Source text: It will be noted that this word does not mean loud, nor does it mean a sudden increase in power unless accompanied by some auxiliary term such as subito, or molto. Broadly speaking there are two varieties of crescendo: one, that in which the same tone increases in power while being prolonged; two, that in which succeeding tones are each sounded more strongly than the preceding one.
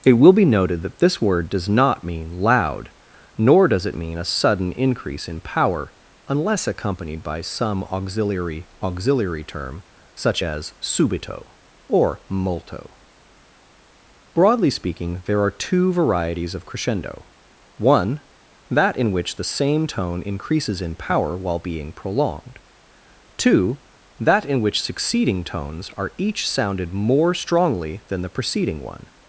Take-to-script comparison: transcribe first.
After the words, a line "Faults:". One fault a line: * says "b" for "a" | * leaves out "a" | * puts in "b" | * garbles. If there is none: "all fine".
It will be noted that this word does not mean loud, nor does it mean a sudden increase in power unless accompanied by some auxiliary auxiliary term such as subito, or molto. Broadly speaking there are two varieties of crescendo: one, that in which the same tone increases in power while being prolonged; two, that in which succeeding tones are each sounded more strongly than the preceding one.
Faults:
* puts in "auxiliary"